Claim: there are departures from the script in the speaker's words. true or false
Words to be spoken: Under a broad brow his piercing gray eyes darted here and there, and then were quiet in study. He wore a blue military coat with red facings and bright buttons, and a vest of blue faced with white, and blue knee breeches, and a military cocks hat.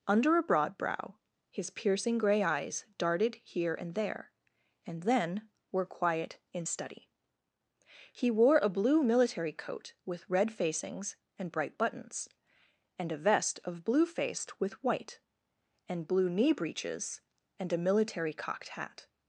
true